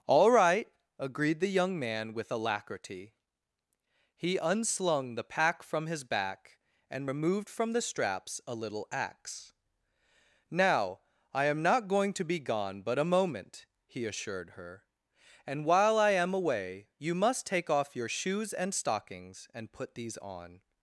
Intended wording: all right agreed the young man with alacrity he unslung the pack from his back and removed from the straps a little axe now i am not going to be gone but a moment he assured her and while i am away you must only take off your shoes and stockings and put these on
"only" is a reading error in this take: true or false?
true